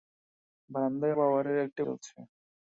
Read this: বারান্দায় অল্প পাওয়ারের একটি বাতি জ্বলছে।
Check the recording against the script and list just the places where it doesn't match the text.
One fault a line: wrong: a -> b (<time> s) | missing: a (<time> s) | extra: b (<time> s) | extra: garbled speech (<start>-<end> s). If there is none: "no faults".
missing: অল্প (1.2 s)
missing: বাতি (1.8 s)